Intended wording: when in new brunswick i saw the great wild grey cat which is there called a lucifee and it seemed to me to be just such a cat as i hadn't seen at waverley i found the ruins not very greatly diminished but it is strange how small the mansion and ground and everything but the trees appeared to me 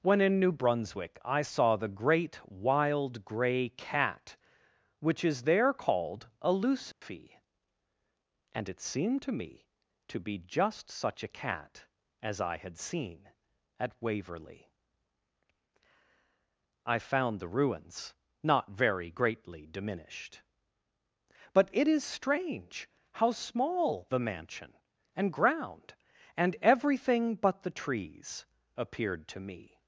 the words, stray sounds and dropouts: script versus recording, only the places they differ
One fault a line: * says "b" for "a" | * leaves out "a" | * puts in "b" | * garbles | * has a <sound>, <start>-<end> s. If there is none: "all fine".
* has a dropout, 6.9-7.0 s
* says "had" for "hadn't"